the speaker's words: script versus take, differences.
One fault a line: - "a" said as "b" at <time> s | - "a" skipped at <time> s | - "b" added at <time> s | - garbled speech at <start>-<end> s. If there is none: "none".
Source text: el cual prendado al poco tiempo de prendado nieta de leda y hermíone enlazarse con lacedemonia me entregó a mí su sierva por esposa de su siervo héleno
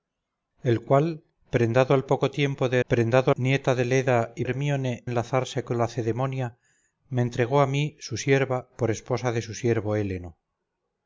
none